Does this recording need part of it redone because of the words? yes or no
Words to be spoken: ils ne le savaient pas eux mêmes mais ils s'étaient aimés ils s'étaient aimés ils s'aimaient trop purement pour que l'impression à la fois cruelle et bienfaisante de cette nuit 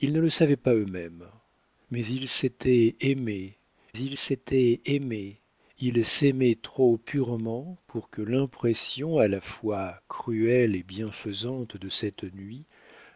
no